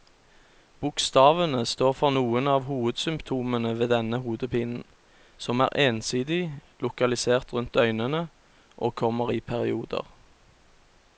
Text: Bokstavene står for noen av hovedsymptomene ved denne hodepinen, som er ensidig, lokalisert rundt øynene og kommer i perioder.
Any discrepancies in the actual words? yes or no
no